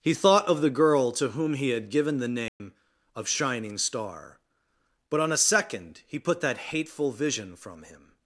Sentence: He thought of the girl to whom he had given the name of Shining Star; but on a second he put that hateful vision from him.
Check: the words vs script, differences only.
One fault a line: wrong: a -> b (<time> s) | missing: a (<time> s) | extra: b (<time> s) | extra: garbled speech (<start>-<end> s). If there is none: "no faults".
no faults